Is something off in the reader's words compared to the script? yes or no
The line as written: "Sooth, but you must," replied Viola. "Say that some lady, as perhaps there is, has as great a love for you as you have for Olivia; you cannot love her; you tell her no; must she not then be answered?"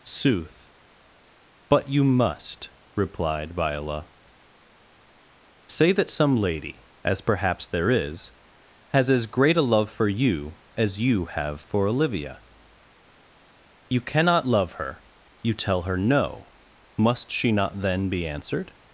no